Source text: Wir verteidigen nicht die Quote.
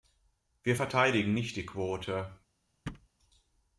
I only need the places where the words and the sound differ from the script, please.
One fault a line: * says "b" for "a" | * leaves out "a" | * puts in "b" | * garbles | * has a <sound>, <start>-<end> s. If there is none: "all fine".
* has a thud, 2.9-3.1 s